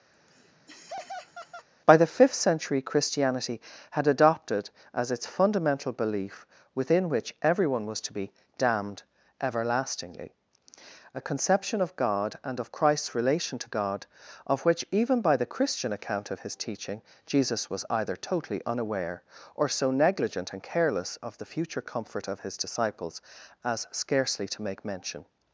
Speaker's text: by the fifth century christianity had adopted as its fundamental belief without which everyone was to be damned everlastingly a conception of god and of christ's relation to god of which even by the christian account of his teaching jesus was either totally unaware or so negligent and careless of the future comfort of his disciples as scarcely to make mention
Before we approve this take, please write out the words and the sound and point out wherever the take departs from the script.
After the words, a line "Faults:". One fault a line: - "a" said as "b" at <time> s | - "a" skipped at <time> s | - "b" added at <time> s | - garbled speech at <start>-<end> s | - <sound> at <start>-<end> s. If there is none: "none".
by the fifth century christianity had adopted as its fundamental belief within which everyone was to be damned everlastingly a conception of god and of christ's relation to god of which even by the christian account of his teaching jesus was either totally unaware or so negligent and careless of the future comfort of his disciples as scarcely to make mention
Faults:
- laugh at 0.1-1.7 s
- "without" said as "within" at 6.7 s